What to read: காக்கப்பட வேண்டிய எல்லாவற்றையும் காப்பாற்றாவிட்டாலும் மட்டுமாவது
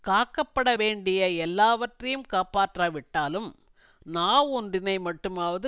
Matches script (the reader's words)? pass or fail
fail